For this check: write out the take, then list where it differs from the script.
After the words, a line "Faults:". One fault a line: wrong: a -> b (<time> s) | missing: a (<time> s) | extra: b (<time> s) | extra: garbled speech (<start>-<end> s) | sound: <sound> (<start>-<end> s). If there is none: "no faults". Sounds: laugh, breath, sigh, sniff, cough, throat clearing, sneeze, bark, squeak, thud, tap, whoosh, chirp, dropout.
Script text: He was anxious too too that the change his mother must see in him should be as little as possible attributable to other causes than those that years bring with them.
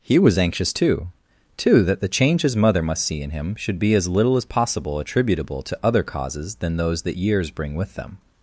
He was anxious too too that the change his mother must see in him should be as little as possible attributable to other causes than those that years bring with them.
Faults:
no faults